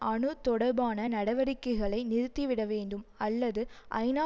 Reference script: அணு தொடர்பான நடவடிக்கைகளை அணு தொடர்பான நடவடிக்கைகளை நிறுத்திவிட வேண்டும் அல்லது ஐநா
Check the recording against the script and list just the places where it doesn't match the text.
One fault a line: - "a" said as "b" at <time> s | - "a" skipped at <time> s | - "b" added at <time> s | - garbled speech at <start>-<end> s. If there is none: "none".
- "அணு தொடர்பான நடவடிக்கைகளை" skipped at 2.0 s